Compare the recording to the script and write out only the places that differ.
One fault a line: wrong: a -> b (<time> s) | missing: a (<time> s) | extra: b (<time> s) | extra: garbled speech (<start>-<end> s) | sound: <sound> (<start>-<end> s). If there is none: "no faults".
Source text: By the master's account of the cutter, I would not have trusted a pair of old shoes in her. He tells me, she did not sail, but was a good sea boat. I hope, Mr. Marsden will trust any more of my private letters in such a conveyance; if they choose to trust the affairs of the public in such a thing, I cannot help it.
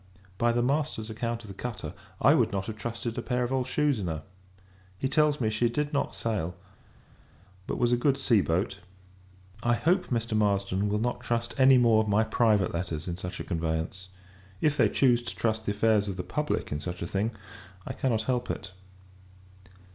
extra: not (11.0 s)